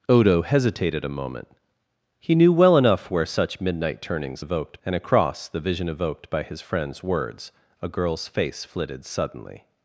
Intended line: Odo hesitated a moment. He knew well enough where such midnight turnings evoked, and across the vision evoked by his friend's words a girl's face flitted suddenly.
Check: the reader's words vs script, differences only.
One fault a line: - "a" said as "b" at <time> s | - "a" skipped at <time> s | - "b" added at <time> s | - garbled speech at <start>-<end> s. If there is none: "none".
none